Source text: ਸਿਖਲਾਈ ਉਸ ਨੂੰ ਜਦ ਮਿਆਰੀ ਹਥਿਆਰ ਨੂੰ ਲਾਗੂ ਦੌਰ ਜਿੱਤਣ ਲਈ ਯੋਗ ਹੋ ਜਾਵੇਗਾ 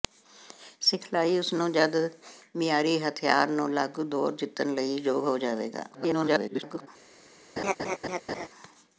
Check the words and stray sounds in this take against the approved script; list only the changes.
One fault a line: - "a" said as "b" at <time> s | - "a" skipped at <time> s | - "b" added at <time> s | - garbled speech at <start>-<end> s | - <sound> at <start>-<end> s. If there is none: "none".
- garbled speech at 5.9-6.9 s
- laugh at 7.6-8.5 s